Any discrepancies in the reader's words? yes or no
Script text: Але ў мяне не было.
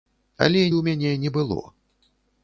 no